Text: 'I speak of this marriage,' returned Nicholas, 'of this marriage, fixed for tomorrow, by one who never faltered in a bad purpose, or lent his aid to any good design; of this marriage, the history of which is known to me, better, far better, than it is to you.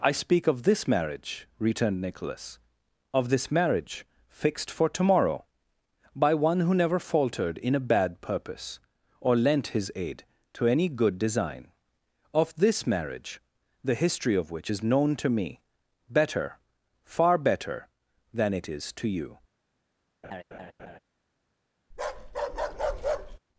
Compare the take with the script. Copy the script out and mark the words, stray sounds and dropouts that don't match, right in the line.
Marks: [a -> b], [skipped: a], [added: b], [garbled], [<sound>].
'I speak of this marriage,' returned Nicholas, 'of this marriage, fixed for tomorrow, by one who never faltered in a bad purpose, or lent his aid to any good design; of this marriage, the history of which is known to me, better, far better, than it is to you. [laugh] [bark]